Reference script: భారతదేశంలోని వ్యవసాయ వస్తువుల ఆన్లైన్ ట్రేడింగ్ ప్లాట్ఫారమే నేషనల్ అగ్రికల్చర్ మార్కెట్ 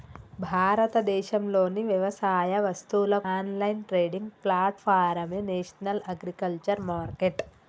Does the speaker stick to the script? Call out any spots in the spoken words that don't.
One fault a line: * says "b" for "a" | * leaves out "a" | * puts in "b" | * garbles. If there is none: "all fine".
all fine